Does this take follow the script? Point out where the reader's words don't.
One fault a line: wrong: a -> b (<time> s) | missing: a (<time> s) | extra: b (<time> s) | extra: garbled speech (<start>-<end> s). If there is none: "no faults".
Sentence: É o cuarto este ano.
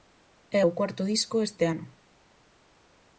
extra: disco (1.1 s)